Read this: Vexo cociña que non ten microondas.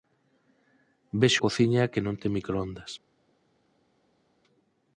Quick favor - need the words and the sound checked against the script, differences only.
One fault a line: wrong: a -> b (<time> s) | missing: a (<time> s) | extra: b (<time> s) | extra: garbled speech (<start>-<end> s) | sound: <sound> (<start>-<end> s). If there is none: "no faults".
no faults